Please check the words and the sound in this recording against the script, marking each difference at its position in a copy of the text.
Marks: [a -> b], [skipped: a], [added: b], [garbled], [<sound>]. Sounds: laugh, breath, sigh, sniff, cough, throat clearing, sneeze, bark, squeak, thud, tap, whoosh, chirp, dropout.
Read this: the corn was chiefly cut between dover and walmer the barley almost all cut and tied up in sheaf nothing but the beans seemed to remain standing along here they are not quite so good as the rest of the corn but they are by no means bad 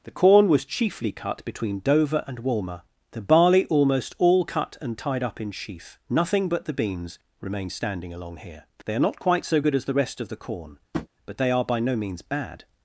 the corn was chiefly cut between dover and walmer the barley almost all cut and tied up in sheaf nothing but the beans [skipped: seemed to] remain standing along here they are not quite so good as the rest of the corn [tap] but they are by no means bad